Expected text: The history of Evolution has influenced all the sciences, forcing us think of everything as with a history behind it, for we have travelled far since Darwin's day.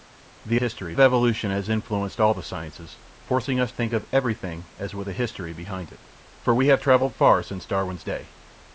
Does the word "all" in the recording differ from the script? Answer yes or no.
no